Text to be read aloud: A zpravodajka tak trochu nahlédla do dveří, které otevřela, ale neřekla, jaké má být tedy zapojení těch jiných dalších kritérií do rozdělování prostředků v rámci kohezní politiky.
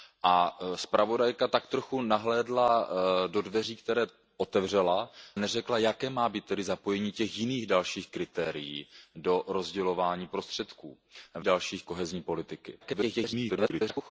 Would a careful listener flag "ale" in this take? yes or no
yes